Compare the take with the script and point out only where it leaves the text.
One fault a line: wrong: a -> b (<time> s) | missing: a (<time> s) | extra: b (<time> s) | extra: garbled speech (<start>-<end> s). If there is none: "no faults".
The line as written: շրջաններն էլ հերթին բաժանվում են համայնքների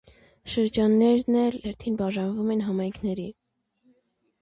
no faults